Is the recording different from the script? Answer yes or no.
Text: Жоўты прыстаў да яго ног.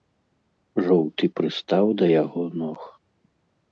no